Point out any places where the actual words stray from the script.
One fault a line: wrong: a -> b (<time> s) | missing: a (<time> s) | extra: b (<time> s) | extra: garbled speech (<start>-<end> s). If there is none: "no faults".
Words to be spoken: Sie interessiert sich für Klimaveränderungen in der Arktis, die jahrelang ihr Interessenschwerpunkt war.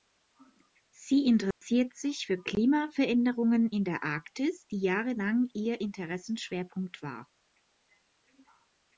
no faults